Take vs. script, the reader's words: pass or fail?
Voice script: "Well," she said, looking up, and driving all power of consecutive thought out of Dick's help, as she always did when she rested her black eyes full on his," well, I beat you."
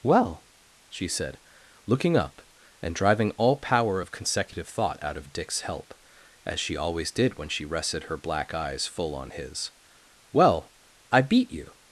pass